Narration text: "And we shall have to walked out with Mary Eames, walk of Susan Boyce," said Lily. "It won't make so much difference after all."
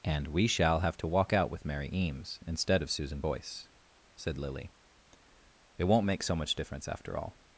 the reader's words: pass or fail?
fail